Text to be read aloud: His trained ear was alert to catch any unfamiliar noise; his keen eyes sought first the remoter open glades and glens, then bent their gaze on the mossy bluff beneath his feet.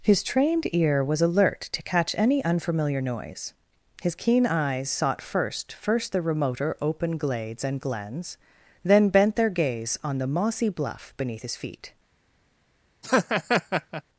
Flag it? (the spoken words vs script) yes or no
yes